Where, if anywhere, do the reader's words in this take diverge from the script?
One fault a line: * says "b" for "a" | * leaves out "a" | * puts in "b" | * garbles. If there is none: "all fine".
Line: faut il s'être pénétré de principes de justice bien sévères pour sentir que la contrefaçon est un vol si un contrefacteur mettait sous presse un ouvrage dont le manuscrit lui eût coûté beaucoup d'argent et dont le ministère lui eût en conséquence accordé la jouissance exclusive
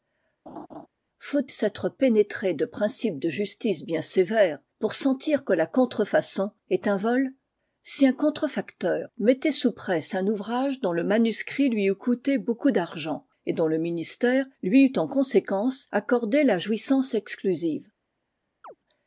* leaves out "il"